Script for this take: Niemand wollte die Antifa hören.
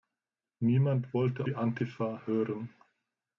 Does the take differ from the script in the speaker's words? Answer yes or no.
no